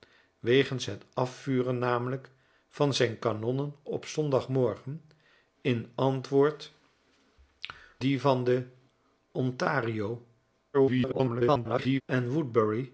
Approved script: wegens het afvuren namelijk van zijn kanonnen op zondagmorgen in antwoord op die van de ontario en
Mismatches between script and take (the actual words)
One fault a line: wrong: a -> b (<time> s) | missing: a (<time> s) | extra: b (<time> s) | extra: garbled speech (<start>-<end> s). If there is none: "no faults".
missing: op (6.7 s)
extra: garbled speech (10.7-12.0 s)